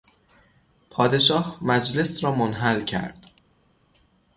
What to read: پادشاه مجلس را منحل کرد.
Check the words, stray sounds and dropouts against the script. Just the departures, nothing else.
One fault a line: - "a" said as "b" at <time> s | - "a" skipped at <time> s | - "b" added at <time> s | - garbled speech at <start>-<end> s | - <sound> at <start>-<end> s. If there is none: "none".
none